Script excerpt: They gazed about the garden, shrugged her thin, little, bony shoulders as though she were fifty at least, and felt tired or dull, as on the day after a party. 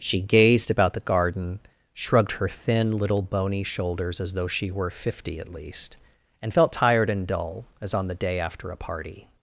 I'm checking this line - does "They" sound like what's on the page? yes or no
no